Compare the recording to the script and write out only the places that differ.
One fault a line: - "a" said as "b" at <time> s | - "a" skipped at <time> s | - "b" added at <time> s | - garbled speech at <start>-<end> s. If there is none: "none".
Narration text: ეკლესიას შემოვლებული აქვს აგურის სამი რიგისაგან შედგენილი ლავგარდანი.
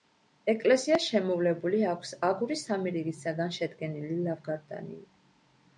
none